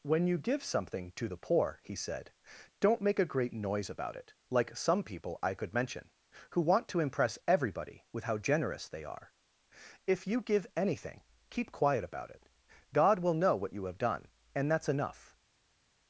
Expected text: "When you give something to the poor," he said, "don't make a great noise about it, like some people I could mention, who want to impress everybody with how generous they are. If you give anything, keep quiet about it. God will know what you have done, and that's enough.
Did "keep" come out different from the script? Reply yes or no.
no